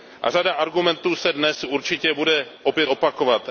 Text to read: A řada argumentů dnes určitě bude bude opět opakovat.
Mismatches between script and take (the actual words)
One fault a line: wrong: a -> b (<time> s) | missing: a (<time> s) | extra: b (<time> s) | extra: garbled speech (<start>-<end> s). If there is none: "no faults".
extra: se (1.1 s)
missing: bude (2.5 s)